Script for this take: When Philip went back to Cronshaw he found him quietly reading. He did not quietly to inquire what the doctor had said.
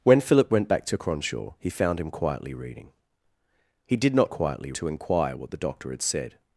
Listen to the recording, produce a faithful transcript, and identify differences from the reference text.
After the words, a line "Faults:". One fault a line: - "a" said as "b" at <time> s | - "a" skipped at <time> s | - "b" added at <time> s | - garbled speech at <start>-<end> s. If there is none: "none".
When Philip went back to Cronshaw he found him quietly reading. He did not quietly to inquire what the doctor had said.
Faults:
none